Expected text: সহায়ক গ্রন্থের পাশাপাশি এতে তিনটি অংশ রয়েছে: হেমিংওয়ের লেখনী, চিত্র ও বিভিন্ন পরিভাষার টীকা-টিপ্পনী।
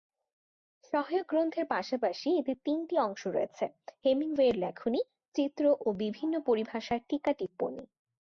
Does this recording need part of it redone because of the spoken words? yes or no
no